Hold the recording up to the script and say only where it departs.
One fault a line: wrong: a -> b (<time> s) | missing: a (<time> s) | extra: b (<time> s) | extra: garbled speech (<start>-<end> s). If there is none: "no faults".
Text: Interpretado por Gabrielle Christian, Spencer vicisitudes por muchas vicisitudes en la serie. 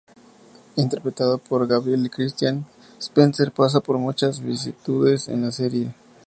wrong: vicisitudes -> pasa (3.5 s)